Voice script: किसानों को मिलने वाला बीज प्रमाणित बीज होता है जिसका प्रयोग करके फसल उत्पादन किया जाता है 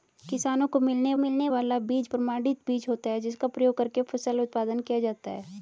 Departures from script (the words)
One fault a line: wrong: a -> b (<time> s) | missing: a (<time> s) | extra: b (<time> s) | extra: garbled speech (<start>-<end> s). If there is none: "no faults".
extra: मिलने (1.2 s)